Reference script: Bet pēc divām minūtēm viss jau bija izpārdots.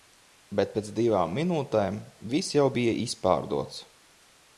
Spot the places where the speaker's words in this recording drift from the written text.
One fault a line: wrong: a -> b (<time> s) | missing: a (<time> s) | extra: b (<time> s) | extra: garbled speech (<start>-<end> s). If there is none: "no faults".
no faults